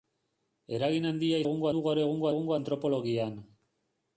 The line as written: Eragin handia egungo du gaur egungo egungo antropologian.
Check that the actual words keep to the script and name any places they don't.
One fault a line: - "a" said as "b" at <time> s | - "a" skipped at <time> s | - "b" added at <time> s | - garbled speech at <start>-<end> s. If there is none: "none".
none